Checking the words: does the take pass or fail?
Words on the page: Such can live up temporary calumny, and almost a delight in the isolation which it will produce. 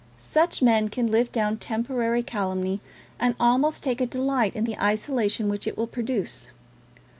fail